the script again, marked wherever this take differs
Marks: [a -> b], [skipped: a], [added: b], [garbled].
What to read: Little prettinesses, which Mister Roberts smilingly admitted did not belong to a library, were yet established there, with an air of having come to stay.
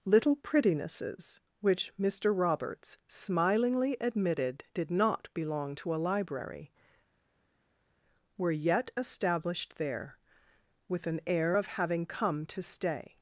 Little prettinesses, which Mister Roberts smilingly admitted did not belong to a library, were yet established there, with an air of having come to stay.